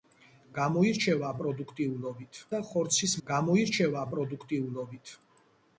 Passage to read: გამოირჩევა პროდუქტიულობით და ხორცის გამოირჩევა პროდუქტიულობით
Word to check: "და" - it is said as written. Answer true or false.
true